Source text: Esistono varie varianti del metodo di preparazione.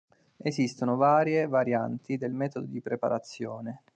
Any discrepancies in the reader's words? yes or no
no